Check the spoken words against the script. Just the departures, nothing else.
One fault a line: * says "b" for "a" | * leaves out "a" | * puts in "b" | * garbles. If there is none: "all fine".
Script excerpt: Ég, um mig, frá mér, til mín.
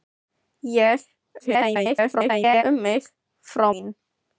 * garbles
* leaves out "mér til"